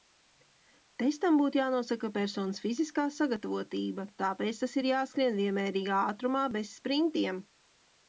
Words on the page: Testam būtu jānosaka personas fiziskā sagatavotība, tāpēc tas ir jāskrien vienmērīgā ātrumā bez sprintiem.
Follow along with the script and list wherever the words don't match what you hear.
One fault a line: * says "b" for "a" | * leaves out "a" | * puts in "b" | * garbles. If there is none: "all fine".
all fine